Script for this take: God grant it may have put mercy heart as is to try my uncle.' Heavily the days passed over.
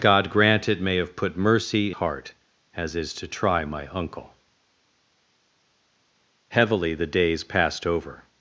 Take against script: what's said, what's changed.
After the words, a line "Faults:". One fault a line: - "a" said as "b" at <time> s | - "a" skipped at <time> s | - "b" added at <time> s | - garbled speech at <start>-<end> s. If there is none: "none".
God grant it may have put mercy heart as is to try my uncle.' Heavily the days passed over.
Faults:
none